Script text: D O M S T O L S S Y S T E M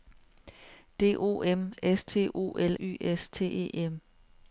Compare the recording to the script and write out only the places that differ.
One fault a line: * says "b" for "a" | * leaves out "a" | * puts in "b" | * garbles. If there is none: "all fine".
* leaves out "S S"